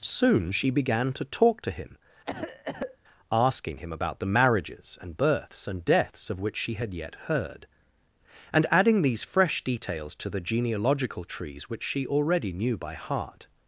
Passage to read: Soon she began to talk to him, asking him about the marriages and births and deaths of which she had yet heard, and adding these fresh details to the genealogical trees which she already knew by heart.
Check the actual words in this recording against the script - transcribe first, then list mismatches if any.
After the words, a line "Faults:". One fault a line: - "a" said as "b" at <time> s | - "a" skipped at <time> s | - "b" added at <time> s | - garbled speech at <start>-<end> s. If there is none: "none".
Soon she began to talk to him, asking him about the marriages and births and deaths of which she had yet heard, and adding these fresh details to the genealogical trees which she already knew by heart.
Faults:
none